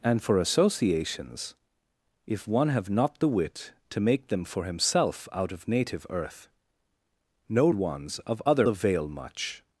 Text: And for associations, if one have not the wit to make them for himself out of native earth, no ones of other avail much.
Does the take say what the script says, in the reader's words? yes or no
yes